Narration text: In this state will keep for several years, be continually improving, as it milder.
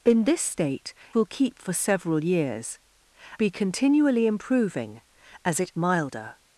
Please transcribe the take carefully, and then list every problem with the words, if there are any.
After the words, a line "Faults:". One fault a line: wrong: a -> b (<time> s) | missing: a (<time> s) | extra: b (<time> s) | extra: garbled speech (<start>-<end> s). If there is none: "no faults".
In this state will keep for several years, be continually improving, as it milder.
Faults:
no faults